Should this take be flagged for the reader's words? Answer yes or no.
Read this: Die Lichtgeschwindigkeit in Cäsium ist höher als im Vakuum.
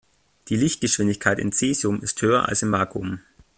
no